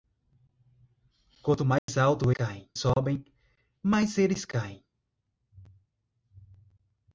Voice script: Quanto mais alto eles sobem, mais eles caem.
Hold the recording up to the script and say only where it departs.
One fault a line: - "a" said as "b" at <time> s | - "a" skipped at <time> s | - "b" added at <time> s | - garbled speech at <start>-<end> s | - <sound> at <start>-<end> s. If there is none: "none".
- dropout at 1.8-1.9 s
- "eles" said as "caem" at 2.3 s